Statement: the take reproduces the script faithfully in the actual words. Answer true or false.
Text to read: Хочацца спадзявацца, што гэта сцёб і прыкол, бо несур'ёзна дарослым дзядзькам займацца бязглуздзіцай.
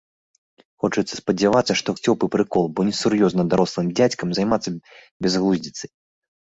false